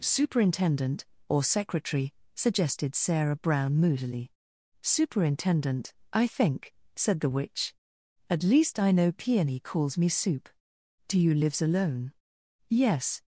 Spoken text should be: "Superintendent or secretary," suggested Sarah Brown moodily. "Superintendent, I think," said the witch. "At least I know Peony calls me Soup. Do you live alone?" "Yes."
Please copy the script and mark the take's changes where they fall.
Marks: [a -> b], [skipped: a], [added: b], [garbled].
"Superintendent or secretary," suggested Sarah Brown moodily. "Superintendent, I think," said the witch. "At least I know Peony calls me Soup. Do you [live -> lives] alone?" "Yes."